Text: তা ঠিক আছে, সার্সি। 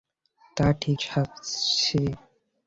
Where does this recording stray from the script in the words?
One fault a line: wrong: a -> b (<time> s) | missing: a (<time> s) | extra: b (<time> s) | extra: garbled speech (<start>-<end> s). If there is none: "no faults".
missing: আছে (1.0 s)